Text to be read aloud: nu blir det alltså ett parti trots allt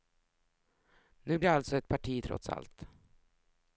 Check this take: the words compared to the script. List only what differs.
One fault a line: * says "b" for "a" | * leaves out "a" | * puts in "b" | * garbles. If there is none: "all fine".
* leaves out "blir"